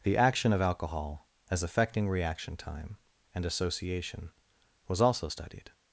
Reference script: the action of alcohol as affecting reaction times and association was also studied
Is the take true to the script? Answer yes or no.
no